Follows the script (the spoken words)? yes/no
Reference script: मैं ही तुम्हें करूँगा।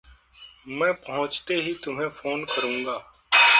no